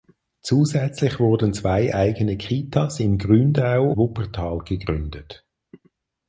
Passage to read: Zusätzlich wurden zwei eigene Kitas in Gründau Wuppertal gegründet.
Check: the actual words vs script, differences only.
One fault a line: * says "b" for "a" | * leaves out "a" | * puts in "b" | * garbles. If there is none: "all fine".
all fine